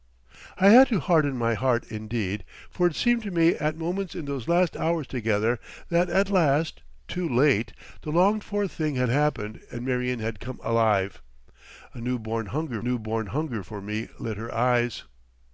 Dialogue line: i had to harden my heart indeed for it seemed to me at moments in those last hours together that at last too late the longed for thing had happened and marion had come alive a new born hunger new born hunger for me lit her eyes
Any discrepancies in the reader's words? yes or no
no